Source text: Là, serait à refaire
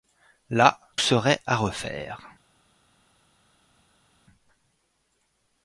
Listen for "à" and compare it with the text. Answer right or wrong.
right